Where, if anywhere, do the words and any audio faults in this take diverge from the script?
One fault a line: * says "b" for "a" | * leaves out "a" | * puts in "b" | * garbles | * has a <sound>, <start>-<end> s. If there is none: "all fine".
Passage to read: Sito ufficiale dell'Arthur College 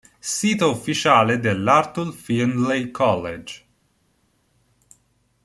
* puts in "Findlay"